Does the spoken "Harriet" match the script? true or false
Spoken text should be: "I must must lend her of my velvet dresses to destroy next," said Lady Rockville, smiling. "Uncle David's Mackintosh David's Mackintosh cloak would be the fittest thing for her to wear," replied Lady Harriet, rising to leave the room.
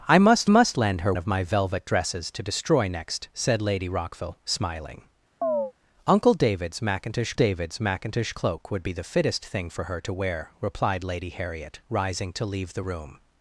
true